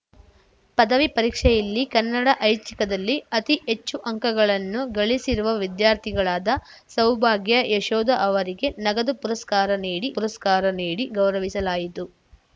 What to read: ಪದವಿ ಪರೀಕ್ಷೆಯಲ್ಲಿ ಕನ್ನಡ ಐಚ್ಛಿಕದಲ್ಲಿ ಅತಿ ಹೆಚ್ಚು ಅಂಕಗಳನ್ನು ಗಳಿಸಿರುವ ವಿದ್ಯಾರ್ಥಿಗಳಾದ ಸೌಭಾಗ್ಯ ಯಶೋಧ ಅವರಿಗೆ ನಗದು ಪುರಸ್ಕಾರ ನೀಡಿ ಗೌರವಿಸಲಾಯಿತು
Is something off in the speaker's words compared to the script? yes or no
yes